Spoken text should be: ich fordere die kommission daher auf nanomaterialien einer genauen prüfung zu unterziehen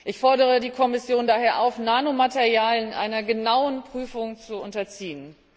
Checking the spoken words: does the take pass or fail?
pass